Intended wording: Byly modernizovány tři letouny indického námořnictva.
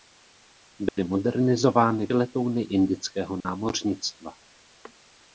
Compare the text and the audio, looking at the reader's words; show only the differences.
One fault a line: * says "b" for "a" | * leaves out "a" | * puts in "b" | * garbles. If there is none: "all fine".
* leaves out "tři"